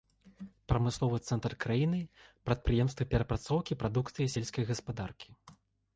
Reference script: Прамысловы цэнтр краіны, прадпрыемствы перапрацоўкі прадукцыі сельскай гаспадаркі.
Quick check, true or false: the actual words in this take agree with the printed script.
true